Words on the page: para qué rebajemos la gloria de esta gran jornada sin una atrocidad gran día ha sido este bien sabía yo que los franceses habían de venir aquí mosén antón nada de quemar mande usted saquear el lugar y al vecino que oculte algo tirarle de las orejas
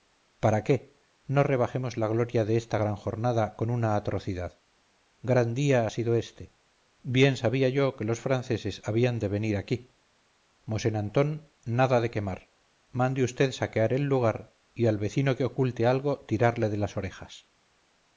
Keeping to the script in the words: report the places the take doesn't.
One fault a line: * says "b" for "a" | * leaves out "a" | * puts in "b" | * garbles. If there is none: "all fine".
* puts in "no"
* says "con" for "sin"